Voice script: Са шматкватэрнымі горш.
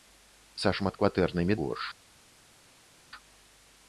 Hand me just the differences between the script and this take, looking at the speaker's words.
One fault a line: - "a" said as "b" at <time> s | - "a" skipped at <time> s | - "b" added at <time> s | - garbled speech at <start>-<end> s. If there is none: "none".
none